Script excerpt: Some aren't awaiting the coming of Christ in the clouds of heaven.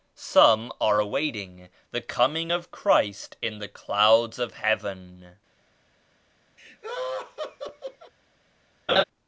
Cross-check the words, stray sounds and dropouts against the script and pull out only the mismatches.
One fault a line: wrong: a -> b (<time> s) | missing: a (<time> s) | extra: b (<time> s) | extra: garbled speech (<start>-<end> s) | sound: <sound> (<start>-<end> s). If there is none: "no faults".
wrong: aren't -> are (0.8 s)
sound: laugh (6.6-8.1 s)
sound: laugh (8.9-9.0 s)